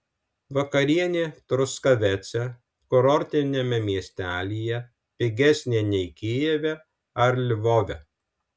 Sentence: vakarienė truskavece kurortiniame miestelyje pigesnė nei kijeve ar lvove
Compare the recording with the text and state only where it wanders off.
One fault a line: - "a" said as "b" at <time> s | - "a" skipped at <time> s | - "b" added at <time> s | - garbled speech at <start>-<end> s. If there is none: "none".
none